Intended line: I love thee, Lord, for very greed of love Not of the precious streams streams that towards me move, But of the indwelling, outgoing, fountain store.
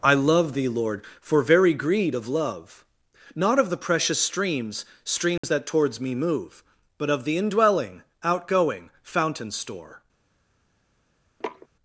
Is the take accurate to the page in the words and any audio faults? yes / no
no